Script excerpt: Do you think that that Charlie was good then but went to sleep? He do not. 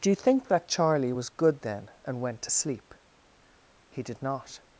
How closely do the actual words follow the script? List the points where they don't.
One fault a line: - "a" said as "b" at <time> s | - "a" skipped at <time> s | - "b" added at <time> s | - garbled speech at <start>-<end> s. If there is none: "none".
- "that" skipped at 0.7 s
- "but" said as "and" at 2.1 s
- "do" said as "did" at 4.0 s